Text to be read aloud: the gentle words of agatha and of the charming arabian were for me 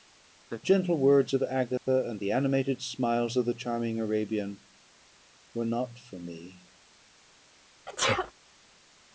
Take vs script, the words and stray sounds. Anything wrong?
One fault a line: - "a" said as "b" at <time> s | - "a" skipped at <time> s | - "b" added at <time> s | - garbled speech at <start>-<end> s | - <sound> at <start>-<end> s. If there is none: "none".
- dropout at 1.8-1.9 s
- "the animated smiles" added at 2.2 s
- "not" added at 5.7 s
- sneeze at 7.9-8.3 s